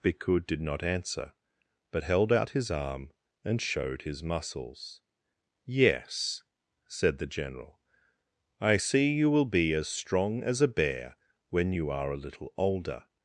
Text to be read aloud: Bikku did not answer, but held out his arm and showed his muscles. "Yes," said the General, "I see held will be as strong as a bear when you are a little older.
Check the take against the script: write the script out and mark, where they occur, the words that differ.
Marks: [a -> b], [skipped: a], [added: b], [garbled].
Bikku did not answer, but held out his arm and showed his muscles. "Yes," said the General, "I see [held -> you] will be as strong as a bear when you are a little older.